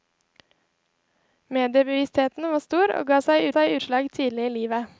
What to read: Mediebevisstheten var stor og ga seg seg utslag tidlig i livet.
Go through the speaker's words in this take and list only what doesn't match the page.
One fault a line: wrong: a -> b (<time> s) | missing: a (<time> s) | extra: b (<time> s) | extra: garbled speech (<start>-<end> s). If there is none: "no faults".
no faults